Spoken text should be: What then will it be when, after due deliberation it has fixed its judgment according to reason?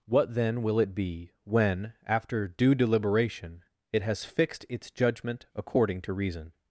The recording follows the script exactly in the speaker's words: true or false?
true